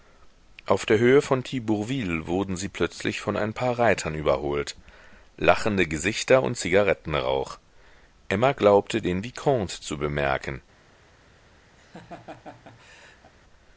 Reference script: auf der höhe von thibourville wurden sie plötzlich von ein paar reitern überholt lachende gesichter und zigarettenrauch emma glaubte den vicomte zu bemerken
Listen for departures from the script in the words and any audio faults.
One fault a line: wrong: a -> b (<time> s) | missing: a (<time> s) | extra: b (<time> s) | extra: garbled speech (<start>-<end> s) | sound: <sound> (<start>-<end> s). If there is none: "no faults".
sound: laugh (11.8-13.3 s)